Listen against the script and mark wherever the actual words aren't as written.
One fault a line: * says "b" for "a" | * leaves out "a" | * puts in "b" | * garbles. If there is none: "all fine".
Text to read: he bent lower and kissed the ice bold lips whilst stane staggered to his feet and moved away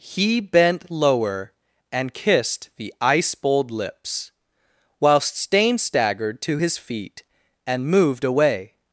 all fine